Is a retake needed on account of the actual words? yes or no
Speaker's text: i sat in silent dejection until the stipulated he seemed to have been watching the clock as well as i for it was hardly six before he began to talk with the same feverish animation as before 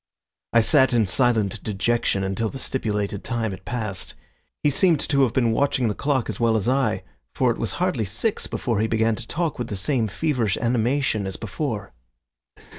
yes